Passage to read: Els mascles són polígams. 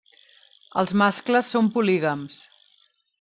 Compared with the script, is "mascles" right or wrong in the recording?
right